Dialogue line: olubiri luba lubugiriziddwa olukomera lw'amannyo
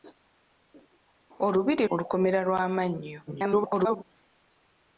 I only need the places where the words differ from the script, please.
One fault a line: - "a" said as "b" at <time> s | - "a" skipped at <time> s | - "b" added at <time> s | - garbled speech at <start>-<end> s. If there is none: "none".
- "luba lubugiriziddwa" skipped at 1.8 s
- garbled speech at 3.3-4.0 s